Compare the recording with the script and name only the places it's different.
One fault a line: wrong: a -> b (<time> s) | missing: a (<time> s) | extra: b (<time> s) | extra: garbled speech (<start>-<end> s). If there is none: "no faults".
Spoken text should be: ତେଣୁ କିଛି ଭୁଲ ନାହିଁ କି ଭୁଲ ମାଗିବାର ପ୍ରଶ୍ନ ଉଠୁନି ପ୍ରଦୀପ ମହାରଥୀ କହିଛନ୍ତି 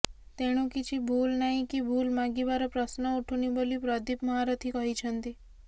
extra: ବୋଲି (3.5 s)